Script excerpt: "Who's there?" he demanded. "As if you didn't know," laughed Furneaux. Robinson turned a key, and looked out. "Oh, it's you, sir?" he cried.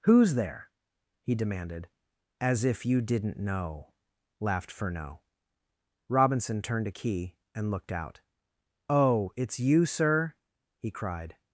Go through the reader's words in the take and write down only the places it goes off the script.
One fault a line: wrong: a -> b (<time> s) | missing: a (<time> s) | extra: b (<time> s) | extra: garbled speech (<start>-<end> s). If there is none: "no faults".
no faults